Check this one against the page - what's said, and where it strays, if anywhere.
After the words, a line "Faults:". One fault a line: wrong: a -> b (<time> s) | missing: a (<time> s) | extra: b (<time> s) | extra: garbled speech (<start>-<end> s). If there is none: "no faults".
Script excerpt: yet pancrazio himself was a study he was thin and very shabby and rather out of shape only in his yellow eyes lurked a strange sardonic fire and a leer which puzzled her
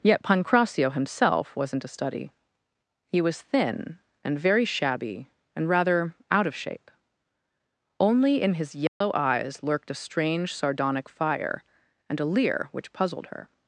yet pancrazio himself wasn't a study he was thin and very shabby and rather out of shape only in his yellow eyes lurked a strange sardonic fire and a leer which puzzled her
Faults:
wrong: was -> wasn't (1.6 s)